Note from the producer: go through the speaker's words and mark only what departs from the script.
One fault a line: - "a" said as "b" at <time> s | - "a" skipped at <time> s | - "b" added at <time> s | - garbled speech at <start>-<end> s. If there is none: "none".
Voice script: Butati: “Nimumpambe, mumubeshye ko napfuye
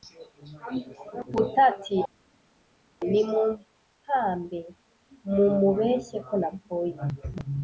none